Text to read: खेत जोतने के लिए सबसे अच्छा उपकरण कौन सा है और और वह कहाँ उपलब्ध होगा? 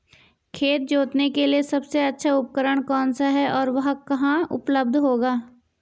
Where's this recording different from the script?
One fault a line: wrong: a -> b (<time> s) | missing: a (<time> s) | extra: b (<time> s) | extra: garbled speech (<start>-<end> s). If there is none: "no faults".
missing: और (3.7 s)